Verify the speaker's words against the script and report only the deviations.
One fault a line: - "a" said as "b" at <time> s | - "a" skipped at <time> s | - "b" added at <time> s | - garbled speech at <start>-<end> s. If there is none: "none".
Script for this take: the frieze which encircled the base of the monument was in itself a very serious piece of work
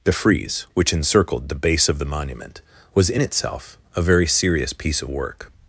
none